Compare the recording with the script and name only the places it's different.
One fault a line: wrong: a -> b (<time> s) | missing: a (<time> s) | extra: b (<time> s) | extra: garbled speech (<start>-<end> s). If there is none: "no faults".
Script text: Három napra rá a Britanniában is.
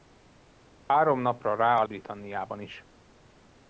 no faults